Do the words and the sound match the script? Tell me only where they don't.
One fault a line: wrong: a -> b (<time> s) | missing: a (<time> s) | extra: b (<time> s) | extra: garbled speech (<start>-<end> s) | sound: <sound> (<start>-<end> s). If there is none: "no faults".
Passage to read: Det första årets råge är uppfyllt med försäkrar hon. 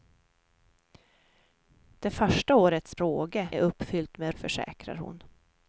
no faults